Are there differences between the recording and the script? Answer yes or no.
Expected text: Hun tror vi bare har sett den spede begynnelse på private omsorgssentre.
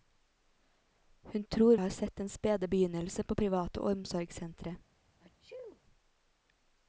yes